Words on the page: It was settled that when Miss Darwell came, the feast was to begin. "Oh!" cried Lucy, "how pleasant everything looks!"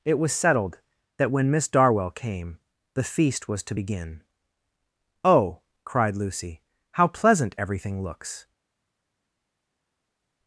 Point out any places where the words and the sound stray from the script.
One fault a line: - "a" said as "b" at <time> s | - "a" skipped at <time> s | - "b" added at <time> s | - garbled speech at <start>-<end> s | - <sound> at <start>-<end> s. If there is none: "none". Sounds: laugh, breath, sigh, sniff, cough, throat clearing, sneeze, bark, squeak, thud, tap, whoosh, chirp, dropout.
none